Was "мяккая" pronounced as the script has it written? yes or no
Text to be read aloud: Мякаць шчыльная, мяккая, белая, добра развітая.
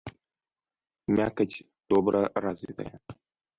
no